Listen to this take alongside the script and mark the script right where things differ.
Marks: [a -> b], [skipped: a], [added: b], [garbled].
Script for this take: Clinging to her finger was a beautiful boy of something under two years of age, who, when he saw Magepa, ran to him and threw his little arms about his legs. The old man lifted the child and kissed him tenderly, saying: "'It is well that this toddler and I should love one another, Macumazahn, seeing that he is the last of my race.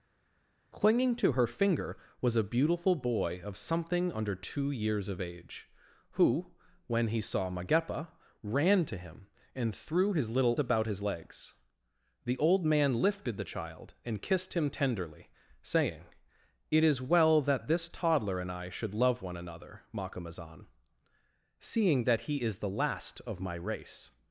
Clinging to her finger was a beautiful boy of something under two years of age, who, when he saw Magepa, ran to him and threw his little [skipped: arms] about his legs. The old man lifted the child and kissed him tenderly, saying: "'It is well that this toddler and I should love one another, Macumazahn, seeing that he is the last of my race.